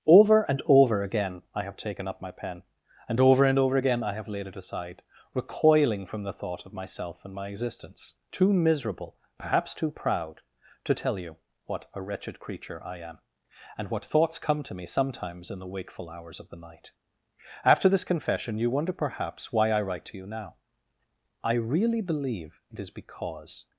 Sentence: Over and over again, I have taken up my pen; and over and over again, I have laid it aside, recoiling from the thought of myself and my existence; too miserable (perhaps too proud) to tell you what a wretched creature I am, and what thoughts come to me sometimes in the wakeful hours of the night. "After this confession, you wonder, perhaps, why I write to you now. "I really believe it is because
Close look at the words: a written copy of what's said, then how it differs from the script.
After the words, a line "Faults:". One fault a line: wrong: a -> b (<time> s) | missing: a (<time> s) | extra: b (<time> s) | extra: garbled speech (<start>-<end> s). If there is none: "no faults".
Over and over again, I have taken up my pen; and over and over again, I have laid it aside, recoiling from the thought of myself and my existence; too miserable (perhaps too proud) to tell you what a wretched creature I am, and what thoughts come to me sometimes in the wakeful hours of the night. "After this confession, you wonder, perhaps, why I write to you now. "I really believe it is because
Faults:
no faults